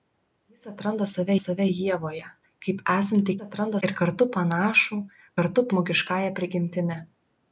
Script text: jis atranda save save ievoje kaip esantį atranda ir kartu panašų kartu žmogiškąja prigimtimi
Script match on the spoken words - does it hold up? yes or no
yes